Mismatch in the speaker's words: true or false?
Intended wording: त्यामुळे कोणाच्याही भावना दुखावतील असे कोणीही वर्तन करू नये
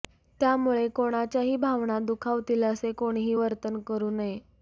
false